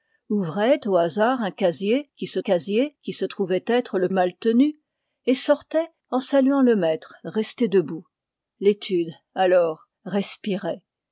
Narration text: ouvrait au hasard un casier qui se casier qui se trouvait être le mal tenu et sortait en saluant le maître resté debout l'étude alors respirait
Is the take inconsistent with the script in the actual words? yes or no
no